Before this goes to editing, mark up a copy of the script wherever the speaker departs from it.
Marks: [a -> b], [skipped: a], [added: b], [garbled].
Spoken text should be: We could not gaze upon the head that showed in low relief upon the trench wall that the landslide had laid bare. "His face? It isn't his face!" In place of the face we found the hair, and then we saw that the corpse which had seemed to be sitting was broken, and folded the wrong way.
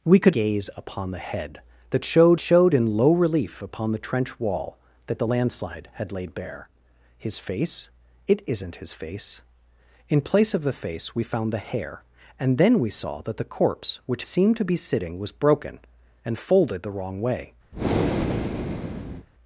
We could [skipped: not] gaze upon the head that showed [added: showed] in low relief upon the trench wall that the landslide had laid bare. "His face? It isn't his face!" In place of the face we found the hair, and then we saw that the corpse which [skipped: had] seemed to be sitting was broken, and folded the wrong way.